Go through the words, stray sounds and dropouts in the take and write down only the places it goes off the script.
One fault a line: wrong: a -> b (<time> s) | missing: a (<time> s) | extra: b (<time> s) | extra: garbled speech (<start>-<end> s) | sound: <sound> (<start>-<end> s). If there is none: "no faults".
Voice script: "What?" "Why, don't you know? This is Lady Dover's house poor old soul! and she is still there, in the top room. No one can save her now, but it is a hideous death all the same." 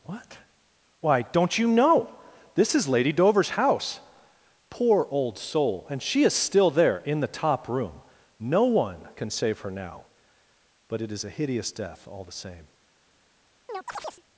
sound: chirp (13.7-14.2 s)